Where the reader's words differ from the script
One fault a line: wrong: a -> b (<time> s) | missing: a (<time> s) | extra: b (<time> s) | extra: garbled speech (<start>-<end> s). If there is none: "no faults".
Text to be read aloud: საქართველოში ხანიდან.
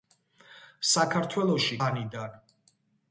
no faults